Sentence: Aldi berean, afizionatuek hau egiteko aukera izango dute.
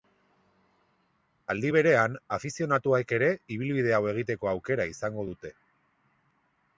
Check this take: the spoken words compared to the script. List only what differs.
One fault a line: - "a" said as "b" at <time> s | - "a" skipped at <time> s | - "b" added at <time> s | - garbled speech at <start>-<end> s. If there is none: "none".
- "ere ibilbide" added at 3.2 s